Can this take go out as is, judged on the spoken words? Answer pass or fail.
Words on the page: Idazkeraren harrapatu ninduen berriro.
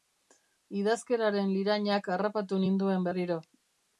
fail